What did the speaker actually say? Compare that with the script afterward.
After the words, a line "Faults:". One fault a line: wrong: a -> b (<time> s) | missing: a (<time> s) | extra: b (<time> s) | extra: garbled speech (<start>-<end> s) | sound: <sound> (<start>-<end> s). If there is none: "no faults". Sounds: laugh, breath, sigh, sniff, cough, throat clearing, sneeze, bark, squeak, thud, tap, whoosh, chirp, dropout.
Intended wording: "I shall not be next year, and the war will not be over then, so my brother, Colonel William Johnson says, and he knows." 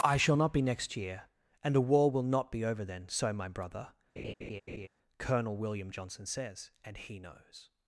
"I shall not be next year, and the war will not be over then, so my brother, Colonel William Johnson says, and he knows."
Faults:
sound: laugh (4.2-4.9 s)